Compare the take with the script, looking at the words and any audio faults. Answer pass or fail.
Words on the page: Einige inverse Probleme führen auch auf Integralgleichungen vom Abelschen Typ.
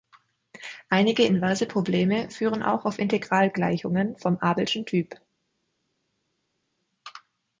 pass